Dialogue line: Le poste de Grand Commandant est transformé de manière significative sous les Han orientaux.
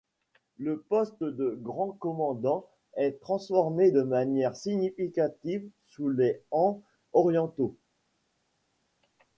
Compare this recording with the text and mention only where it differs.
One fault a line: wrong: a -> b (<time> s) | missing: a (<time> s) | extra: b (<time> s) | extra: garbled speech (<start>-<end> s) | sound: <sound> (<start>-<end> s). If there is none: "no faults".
no faults